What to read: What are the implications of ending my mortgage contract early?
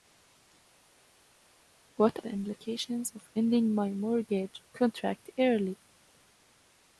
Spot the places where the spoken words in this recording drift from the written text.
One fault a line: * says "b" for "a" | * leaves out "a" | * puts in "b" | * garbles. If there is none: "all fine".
* leaves out "are"